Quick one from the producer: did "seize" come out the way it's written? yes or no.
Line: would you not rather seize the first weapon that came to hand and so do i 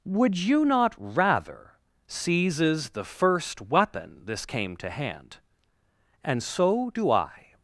no